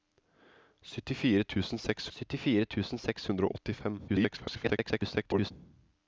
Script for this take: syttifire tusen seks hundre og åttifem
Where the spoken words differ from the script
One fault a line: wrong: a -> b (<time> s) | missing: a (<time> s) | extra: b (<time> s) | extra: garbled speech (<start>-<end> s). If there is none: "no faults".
extra: syttifire tusen seks (2.1 s)
extra: garbled speech (4.1-5.5 s)